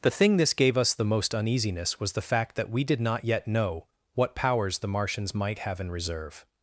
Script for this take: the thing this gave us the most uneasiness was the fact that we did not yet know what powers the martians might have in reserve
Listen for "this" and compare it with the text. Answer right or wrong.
right